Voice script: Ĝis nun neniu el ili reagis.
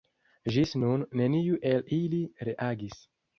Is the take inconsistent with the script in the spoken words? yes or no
no